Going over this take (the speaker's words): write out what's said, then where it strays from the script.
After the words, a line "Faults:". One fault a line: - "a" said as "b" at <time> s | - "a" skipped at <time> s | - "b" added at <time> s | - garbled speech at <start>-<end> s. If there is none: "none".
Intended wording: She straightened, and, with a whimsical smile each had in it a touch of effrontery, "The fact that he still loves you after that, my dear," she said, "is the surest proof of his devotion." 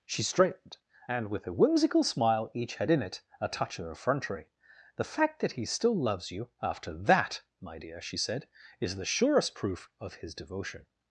She straightened, and, with a whimsical smile each had in it a touch of effrontery, "The fact that he still loves you after that, my dear," she said, "is the surest proof of his devotion."
Faults:
none